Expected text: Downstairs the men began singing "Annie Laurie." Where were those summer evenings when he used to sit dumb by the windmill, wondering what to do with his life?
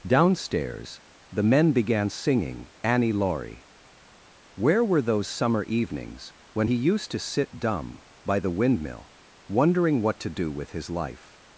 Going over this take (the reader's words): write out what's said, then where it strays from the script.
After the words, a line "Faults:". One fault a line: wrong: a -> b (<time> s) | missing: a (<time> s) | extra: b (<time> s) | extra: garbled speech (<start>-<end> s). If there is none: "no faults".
Downstairs the men began singing "Annie Laurie." Where were those summer evenings when he used to sit dumb by the windmill, wondering what to do with his life?
Faults:
no faults